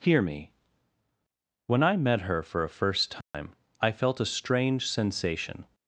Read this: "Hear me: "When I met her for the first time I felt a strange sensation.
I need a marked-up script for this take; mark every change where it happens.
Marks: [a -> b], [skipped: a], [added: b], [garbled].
"Hear me: "When I met her for [the -> a] first time I felt a strange sensation.